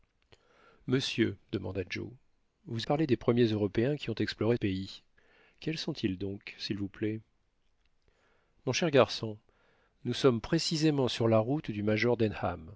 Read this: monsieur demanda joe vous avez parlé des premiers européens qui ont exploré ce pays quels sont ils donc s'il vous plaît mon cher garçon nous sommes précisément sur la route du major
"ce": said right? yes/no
no